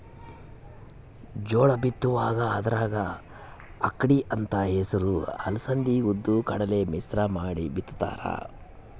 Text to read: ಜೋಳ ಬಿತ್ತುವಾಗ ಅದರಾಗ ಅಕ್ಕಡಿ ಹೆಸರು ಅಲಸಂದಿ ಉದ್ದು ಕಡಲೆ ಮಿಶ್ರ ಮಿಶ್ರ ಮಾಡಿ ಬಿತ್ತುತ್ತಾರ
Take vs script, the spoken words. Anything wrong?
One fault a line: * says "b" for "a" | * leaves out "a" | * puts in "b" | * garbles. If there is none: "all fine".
* puts in "ಅಂತ"
* leaves out "ಮಿಶ್ರ"